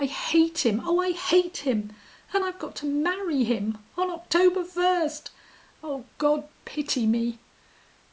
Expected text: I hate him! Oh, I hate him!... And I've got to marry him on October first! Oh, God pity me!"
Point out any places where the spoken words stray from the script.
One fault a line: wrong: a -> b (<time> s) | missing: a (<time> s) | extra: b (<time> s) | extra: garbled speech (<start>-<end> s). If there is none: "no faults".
no faults